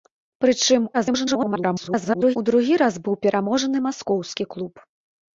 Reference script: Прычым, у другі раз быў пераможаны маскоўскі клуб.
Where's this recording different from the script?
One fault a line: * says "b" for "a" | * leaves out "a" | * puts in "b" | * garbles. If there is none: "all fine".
* garbles